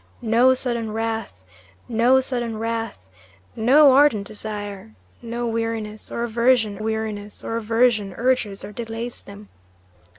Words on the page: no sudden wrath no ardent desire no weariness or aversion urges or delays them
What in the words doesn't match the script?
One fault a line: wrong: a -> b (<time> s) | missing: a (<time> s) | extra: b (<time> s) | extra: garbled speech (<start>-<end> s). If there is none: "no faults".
extra: sudden wrath no (2.2 s)
extra: weariness or aversion (6.8 s)